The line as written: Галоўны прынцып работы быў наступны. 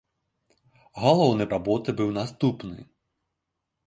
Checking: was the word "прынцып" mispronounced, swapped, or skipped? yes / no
yes